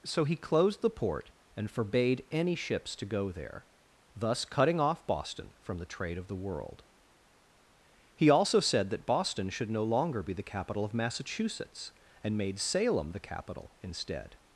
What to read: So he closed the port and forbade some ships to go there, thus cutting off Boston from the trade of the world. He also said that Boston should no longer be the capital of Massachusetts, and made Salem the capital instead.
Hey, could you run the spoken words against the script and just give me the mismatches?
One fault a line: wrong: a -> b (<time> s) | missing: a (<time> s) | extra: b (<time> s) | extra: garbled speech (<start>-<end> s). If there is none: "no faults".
wrong: some -> any (2.3 s)